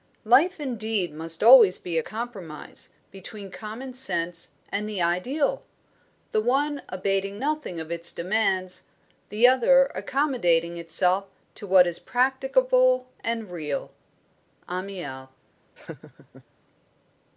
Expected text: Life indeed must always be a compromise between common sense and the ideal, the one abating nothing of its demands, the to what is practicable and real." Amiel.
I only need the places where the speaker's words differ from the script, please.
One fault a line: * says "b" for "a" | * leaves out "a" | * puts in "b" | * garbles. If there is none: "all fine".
* puts in "other accommodating itself"